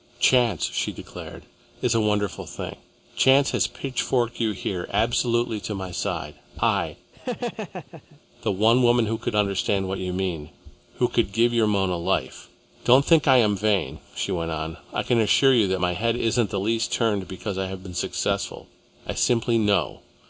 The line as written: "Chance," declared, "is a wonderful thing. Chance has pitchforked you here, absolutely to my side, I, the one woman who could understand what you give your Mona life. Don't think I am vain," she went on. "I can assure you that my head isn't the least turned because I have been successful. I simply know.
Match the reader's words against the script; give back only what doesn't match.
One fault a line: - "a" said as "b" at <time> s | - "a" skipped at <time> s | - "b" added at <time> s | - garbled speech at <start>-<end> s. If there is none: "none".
- "she" added at 0.7 s
- "mean who could" added at 10.1 s